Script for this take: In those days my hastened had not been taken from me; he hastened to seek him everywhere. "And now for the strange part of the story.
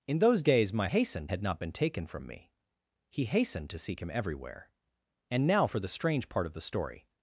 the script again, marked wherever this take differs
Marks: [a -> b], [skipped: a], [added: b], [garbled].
In those days my hastened had not been taken from me; he hastened to seek him everywhere. "And now for the strange part of the story.